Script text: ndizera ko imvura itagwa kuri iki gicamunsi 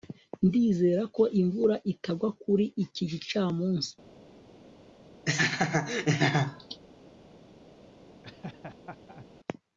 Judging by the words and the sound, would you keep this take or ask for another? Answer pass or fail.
fail